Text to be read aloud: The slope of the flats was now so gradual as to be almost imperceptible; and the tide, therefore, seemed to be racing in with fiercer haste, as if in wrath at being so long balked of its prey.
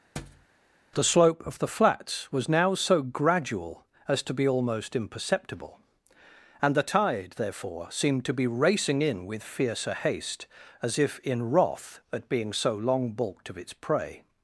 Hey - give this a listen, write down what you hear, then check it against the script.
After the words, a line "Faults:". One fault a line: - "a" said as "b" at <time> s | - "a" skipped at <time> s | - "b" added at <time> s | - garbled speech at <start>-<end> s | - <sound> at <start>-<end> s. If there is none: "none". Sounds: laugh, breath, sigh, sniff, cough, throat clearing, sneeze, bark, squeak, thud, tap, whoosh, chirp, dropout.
The slope of the flats was now so gradual as to be almost imperceptible; and the tide, therefore, seemed to be racing in with fiercer haste, as if in wrath at being so long balked of its prey.
Faults:
- thud at 0.2-0.5 s